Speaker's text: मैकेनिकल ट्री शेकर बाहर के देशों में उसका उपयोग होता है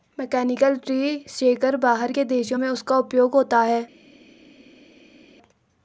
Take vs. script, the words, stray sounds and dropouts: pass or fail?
pass